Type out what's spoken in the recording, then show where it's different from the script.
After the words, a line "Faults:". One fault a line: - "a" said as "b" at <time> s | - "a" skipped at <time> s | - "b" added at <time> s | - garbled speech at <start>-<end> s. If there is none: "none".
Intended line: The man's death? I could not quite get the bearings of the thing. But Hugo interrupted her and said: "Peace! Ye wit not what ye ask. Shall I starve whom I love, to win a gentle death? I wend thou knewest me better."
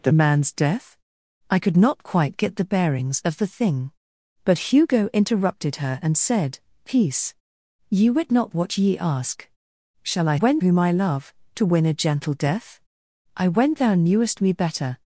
The man's death? I could not quite get the bearings of the thing. But Hugo interrupted her and said: "Peace! Ye wit not what ye ask. Shall I wend whom I love, to win a gentle death? I wend thou knewest me better."
Faults:
- "starve" said as "wend" at 10.3 s